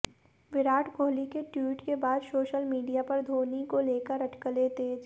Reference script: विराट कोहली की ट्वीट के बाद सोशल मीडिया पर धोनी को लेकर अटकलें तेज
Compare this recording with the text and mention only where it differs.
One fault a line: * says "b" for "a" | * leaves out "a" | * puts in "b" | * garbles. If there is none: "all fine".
* says "के" for "की"